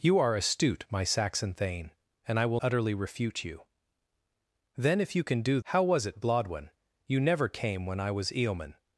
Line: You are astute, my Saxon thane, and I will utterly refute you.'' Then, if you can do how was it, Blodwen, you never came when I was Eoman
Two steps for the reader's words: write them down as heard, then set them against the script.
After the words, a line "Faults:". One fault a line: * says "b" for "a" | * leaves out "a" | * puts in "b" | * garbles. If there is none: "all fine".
You are astute, my Saxon thane, and I will utterly refute you.'' Then, if you can do how was it, Blodwen, you never came when I was Eoman
Faults:
all fine